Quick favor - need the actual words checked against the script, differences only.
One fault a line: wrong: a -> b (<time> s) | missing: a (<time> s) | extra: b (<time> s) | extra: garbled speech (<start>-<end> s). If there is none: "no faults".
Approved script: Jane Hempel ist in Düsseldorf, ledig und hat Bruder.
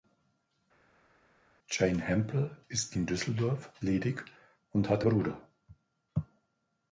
no faults